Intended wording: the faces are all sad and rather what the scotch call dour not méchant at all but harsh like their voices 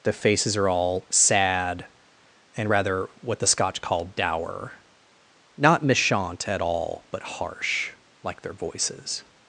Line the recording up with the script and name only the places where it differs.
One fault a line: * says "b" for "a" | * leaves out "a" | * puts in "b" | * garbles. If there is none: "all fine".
all fine